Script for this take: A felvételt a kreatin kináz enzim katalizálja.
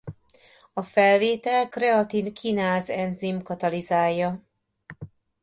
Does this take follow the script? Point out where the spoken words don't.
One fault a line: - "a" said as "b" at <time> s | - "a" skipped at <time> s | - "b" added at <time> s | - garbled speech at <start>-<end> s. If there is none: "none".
- "a" skipped at 1.7 s